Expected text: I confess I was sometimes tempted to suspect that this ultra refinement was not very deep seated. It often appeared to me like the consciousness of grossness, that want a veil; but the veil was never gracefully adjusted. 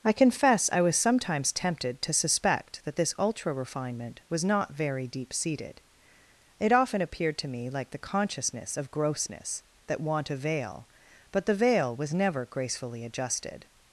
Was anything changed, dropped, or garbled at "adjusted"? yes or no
no